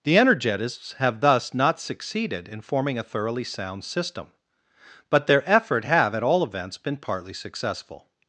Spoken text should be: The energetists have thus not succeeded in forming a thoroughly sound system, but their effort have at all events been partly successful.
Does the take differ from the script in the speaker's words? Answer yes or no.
no